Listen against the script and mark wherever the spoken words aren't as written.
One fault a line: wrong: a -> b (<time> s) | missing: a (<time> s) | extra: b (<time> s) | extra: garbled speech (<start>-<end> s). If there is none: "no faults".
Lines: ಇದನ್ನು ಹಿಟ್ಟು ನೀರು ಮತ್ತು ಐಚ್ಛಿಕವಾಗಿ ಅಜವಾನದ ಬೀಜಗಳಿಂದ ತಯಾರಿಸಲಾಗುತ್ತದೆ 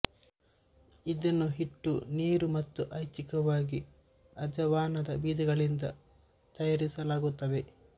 no faults